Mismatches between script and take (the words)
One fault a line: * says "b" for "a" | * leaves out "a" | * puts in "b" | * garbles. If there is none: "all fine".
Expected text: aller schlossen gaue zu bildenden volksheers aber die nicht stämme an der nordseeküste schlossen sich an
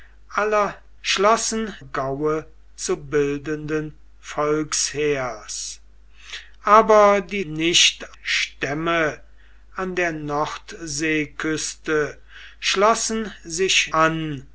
all fine